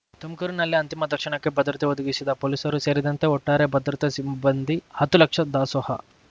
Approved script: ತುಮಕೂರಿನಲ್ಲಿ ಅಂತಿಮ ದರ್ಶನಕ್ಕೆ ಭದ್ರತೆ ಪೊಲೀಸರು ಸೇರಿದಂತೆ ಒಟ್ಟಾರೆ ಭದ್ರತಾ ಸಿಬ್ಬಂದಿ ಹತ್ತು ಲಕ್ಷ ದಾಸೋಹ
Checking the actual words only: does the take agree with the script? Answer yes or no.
no